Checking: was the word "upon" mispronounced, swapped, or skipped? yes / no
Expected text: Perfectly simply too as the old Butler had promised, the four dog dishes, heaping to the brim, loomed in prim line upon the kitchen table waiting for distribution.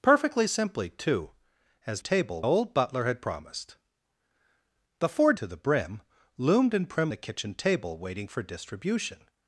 yes